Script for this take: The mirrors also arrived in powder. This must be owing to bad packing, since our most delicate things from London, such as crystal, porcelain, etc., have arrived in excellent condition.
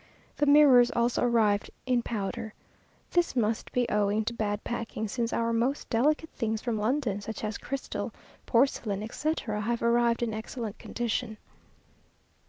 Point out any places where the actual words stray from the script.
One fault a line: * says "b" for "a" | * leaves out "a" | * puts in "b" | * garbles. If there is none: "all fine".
all fine